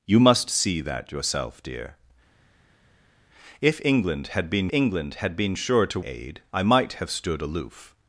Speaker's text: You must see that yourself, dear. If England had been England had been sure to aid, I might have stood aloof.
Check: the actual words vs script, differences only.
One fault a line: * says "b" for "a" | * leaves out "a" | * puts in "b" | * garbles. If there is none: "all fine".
all fine